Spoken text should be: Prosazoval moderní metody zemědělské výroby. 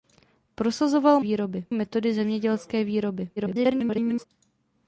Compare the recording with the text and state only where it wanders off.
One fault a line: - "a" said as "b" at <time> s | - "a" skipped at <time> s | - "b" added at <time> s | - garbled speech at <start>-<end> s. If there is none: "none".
- "moderní" said as "výroby" at 1.2 s
- garbled speech at 3.4-4.3 s